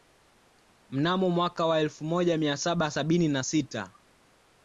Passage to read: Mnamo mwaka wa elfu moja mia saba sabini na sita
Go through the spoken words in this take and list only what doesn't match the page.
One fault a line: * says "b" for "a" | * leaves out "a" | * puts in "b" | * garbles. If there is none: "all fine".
all fine